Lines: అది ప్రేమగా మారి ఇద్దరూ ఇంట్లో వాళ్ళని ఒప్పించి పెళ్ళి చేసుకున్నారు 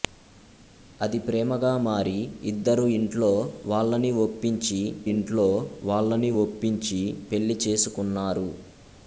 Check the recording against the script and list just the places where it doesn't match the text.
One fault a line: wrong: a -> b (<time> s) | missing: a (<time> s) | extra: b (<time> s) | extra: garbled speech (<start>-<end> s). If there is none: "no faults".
extra: ఇంట్లో వాళ్ళని ఒప్పించి (5.1 s)